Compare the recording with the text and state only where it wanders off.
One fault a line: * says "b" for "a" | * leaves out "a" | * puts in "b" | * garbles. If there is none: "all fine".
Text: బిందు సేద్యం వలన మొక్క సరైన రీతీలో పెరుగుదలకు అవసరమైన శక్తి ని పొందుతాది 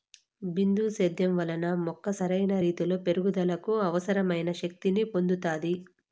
all fine